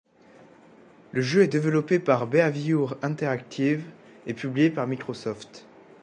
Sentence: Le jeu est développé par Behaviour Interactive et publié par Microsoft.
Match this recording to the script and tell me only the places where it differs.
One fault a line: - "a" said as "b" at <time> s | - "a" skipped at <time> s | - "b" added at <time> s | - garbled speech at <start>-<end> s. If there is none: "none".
none